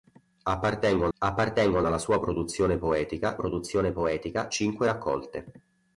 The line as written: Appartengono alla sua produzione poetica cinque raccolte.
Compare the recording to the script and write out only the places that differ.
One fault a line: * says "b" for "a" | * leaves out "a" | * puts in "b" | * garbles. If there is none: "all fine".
* puts in "appartengono"
* puts in "produzione poetica"